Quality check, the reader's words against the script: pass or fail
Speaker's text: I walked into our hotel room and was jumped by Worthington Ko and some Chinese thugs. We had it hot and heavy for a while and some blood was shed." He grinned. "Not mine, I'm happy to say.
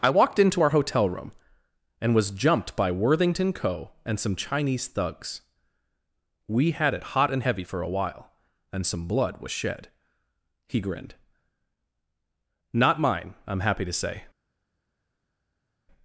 pass